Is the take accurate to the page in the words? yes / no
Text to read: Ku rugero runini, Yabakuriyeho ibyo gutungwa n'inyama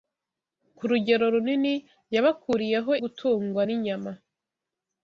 no